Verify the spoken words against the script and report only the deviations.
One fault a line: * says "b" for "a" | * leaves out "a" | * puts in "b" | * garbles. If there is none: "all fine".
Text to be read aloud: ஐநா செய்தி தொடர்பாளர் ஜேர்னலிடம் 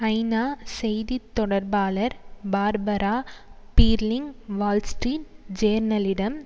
* puts in "பார்பரா பீர்லிங் வால்ஸ்ட்ரீட்"